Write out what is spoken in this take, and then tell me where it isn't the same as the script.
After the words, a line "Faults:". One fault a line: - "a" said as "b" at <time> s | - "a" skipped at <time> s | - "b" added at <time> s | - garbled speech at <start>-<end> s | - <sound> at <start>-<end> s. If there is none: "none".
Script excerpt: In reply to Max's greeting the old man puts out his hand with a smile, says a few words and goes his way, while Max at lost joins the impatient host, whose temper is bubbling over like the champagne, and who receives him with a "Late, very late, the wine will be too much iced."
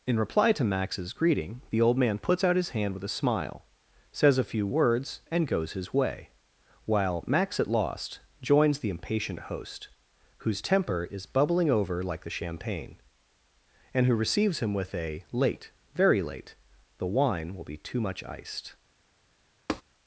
In reply to Max's greeting the old man puts out his hand with a smile, says a few words and goes his way, while Max at lost joins the impatient host, whose temper is bubbling over like the champagne, and who receives him with a "Late, very late, the wine will be too much iced."
Faults:
- tap at 19.7-19.8 s